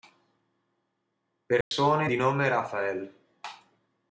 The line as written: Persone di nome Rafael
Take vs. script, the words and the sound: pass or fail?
fail